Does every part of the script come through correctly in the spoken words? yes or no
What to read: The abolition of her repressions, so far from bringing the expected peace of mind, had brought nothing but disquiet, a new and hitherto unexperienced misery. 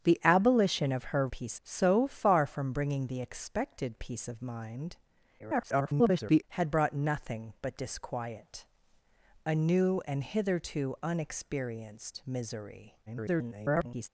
no